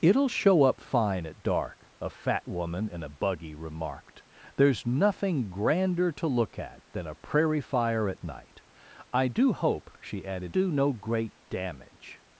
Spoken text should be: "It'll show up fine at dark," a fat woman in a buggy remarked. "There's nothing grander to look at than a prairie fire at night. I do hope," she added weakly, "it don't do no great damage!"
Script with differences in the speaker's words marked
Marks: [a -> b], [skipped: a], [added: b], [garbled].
"It'll show up fine at dark," a fat woman in a buggy remarked. "There's nothing grander to look at than a prairie fire at night. I do hope," she added [skipped: weakly, "it don't] do no great damage!"